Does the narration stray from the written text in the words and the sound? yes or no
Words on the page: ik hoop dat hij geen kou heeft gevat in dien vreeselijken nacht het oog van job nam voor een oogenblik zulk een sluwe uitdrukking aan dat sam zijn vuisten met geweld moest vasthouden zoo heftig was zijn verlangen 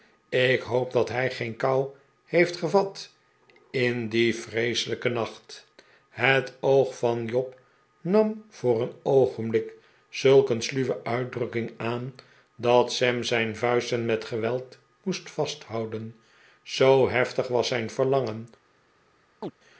yes